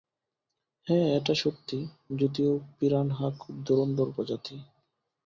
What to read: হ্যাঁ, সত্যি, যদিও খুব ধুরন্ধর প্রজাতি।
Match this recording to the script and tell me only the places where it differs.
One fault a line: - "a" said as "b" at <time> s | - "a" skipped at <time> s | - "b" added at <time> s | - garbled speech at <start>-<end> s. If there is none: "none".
- "এটা" added at 1.2 s
- "পিরানহা" added at 2.8 s